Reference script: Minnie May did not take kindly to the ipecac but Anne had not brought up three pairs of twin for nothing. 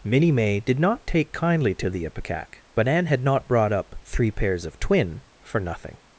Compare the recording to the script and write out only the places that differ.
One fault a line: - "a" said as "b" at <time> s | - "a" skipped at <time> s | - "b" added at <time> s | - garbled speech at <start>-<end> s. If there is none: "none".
none